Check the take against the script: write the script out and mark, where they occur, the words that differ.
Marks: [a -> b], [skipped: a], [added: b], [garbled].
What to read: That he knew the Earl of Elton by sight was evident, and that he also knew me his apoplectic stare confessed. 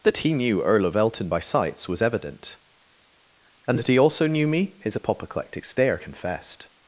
That he knew [skipped: the] Earl of Elton by [sight -> sights] was evident, and that he also knew me his apoplectic stare confessed.